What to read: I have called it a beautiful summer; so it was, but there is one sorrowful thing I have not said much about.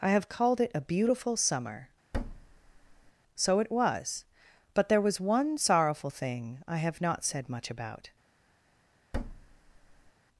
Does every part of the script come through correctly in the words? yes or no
no